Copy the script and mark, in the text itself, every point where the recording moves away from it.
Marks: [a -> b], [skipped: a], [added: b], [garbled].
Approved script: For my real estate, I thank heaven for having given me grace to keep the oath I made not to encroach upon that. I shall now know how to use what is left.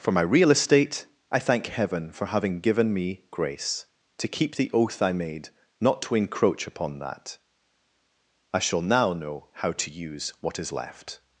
For my real estate, I thank heaven for having given me grace to keep the oath I made not to encroach upon that. I shall now know how to use what is left.